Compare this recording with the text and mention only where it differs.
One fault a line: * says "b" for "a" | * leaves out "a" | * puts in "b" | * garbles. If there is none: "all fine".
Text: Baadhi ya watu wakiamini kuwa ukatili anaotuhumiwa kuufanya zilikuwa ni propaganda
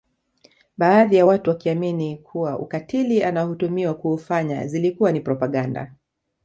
all fine